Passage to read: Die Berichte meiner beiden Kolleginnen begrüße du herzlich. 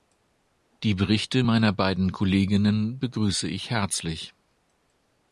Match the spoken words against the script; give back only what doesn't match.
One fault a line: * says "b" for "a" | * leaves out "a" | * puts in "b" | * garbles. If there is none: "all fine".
* says "ich" for "du"